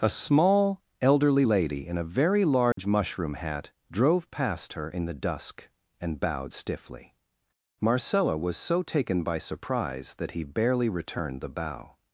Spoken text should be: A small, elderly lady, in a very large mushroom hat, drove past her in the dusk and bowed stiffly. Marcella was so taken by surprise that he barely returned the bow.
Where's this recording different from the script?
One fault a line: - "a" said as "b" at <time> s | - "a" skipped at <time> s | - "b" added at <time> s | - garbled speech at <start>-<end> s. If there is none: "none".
none